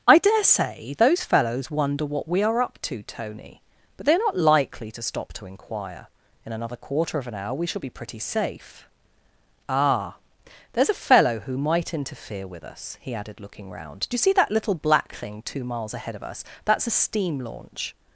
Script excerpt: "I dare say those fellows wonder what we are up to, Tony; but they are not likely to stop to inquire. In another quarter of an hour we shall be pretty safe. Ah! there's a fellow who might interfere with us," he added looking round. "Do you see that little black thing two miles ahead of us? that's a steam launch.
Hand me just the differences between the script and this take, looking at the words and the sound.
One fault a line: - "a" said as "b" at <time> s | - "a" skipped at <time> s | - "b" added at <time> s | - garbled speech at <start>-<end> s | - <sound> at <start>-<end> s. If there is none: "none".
none